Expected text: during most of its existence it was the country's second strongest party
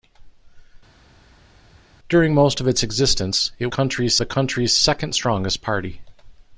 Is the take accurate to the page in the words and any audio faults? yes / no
no